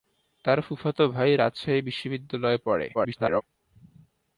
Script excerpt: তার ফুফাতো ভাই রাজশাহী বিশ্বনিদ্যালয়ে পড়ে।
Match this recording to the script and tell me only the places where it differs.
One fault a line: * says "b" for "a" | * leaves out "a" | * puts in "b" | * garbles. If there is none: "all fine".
* garbles